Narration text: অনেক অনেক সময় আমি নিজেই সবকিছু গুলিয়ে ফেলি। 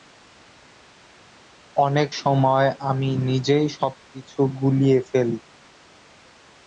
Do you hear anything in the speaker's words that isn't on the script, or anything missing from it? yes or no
yes